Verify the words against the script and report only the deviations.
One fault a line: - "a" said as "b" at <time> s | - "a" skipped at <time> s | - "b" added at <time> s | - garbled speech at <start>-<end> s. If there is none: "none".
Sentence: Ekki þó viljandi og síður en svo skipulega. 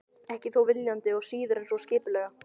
none